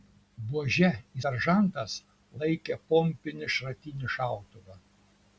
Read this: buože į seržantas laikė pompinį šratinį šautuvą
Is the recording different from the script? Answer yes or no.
no